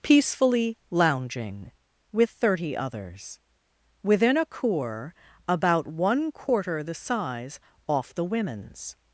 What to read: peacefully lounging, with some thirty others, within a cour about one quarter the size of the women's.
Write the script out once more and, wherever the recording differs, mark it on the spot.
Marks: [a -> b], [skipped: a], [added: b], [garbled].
peacefully lounging, with [skipped: some] thirty others, within a cour about one quarter the size [of -> off] the women's.